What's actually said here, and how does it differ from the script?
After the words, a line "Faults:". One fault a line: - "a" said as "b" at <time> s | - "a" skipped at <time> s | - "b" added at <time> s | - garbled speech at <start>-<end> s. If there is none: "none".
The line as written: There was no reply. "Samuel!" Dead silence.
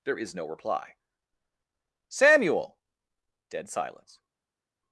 There is no reply. "Samuel!" Dead silence.
Faults:
- "was" said as "is" at 0.2 s